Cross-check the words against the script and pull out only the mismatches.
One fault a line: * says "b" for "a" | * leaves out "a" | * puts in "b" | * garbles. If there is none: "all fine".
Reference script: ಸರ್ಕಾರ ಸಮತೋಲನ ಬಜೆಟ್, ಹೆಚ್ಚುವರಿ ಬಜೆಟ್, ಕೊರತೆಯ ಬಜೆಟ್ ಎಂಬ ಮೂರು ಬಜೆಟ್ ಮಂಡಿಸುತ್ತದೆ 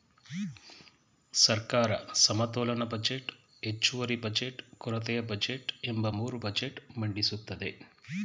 all fine